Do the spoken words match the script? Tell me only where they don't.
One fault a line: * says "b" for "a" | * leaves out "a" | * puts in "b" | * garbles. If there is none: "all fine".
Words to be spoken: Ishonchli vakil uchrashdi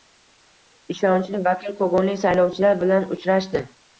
* puts in "kogonlik saylovchilar bilan"